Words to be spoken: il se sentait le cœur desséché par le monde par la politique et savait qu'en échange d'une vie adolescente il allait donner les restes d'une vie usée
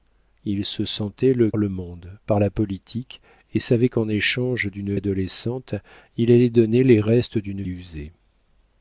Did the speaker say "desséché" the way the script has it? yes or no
no